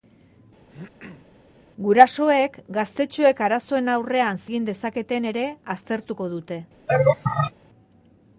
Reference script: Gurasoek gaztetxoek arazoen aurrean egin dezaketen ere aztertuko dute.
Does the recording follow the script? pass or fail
pass